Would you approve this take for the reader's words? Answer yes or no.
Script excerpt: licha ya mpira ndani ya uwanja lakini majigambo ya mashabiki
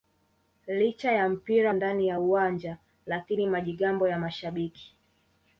yes